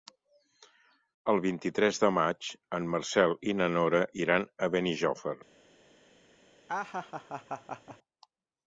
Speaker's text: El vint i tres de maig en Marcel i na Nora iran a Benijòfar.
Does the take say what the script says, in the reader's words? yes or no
yes